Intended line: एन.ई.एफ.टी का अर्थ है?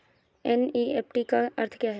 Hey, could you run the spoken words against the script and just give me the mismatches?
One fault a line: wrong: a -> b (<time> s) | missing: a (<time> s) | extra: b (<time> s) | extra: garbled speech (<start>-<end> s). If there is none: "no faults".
extra: क्या (1.8 s)